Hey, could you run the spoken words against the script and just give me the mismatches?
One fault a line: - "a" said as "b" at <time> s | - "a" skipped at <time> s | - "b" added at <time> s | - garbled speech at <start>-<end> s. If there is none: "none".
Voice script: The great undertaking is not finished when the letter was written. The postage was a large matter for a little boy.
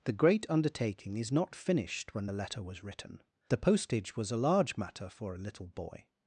none